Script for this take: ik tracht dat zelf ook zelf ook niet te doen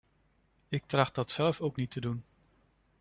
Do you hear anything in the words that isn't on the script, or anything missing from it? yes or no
yes